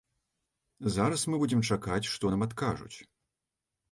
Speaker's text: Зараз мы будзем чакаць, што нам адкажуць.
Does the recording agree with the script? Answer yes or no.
yes